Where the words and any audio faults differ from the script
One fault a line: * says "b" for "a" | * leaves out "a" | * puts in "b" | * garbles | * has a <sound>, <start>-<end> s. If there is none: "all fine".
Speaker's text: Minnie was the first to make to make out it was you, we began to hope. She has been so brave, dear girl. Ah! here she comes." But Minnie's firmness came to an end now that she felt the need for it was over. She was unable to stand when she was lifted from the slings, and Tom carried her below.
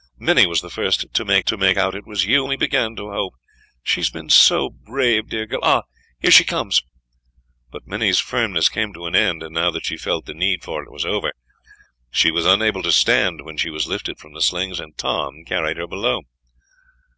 all fine